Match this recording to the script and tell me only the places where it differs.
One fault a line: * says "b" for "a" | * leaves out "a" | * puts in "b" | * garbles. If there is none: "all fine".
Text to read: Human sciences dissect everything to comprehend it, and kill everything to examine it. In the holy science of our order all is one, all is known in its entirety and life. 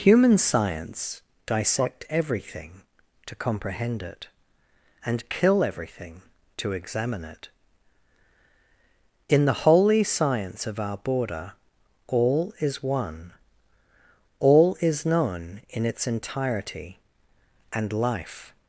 * says "science" for "sciences"
* says "border" for "order"